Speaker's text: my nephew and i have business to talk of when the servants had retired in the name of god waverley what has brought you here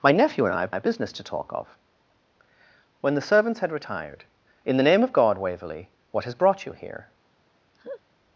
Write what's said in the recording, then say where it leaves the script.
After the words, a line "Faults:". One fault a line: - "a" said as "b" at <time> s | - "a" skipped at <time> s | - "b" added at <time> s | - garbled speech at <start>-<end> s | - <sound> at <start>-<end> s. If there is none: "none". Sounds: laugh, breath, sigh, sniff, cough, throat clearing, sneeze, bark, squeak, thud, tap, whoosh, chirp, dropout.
my nephew and i have have business to talk of when the servants had retired in the name of god waverley what has brought you here
Faults:
- "have" added at 0.7 s
- laugh at 7.7-8.0 s